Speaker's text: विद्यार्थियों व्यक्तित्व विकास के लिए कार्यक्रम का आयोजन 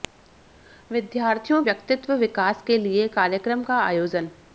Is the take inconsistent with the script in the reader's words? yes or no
no